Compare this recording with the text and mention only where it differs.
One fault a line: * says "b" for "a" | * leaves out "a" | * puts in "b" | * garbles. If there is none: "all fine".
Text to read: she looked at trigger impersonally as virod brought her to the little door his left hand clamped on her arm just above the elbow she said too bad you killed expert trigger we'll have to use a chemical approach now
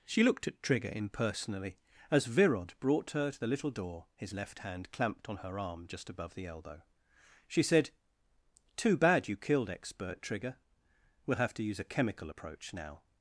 all fine